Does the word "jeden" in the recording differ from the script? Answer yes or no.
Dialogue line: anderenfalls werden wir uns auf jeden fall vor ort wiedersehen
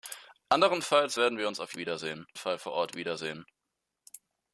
yes